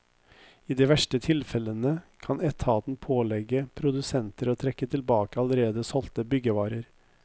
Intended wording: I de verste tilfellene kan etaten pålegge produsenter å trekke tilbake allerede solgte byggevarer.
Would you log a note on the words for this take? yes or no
no